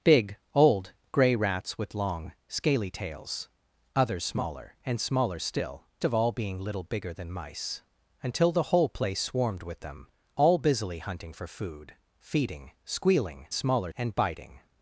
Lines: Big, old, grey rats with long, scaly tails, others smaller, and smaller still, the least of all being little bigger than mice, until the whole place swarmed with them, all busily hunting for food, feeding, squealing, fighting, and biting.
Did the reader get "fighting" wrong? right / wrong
wrong